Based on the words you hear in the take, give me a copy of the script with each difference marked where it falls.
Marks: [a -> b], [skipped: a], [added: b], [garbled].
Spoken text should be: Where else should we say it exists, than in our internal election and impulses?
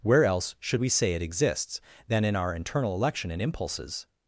Where else should we say it exists, than in our internal election and impulses?